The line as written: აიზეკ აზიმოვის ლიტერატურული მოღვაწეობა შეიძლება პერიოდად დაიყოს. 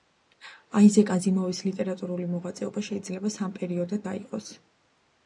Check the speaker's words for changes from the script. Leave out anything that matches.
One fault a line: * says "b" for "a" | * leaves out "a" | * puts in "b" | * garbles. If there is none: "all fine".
* puts in "სამ"